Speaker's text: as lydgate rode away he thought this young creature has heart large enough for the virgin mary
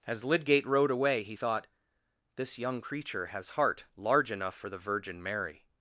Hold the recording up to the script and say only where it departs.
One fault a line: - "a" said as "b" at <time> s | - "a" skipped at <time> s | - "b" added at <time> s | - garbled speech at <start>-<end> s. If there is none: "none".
none